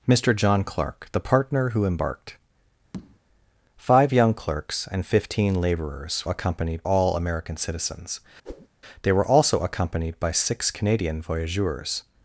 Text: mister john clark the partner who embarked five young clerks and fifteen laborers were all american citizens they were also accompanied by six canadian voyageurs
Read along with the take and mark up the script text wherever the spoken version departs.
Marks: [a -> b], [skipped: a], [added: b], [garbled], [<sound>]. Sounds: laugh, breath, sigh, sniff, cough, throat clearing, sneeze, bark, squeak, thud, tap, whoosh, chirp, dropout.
mister john clark the partner who embarked [tap] five young clerks and fifteen laborers [were -> accompanied] all american citizens [whoosh] they were also accompanied by six canadian voyageurs